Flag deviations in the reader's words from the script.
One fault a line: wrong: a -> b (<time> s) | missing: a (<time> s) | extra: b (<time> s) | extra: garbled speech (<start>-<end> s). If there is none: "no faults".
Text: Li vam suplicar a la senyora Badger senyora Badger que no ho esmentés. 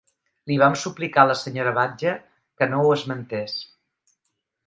missing: senyora Badger (2.1 s)